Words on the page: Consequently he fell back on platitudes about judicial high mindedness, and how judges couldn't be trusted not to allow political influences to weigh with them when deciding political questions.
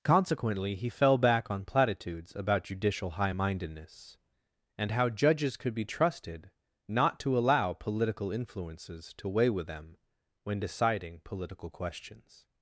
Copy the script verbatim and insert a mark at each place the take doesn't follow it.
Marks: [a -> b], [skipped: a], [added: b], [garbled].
Consequently he fell back on platitudes about judicial high mindedness, and how judges [couldn't -> could] be trusted not to allow political influences to weigh with them when deciding political questions.